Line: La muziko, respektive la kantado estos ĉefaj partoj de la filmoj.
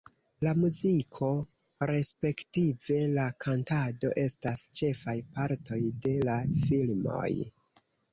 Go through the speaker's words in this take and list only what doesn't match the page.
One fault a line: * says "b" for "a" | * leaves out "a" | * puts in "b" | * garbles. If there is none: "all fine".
* says "estas" for "estos"